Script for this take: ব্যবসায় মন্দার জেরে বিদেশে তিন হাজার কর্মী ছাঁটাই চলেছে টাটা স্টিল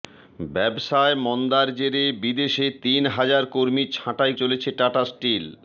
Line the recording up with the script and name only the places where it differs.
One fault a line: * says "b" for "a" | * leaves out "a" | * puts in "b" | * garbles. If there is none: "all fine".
all fine